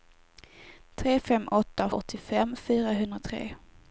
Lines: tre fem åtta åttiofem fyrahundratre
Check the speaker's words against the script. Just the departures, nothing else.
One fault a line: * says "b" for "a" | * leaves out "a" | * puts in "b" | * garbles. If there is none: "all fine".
all fine